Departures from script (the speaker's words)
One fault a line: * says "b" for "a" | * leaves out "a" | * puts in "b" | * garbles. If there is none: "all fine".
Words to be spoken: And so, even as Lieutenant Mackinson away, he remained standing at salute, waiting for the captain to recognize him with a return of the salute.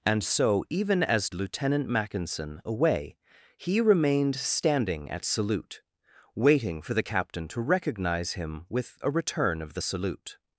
all fine